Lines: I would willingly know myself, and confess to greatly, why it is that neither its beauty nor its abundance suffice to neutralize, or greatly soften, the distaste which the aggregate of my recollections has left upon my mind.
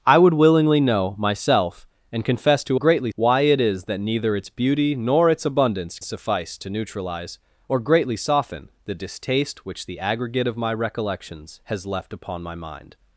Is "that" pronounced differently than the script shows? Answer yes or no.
no